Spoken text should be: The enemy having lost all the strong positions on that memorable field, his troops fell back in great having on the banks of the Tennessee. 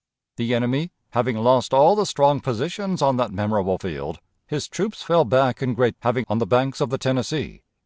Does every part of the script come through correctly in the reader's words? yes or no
yes